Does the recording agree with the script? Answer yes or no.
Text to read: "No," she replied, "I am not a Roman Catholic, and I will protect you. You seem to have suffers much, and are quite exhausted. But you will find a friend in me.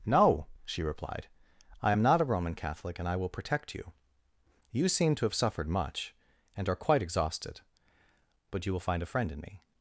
no